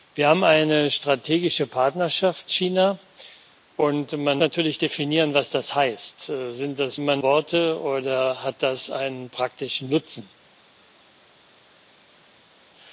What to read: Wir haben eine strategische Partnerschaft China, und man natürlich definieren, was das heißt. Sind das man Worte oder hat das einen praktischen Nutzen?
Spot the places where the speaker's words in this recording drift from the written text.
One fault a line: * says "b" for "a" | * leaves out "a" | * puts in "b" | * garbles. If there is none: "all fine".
all fine